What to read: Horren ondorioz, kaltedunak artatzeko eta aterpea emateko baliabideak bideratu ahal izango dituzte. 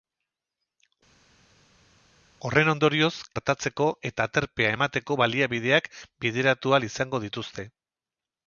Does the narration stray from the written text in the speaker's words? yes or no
yes